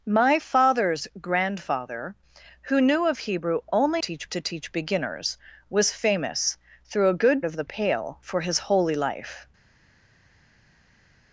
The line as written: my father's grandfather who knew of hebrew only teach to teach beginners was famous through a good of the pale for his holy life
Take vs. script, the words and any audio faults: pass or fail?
pass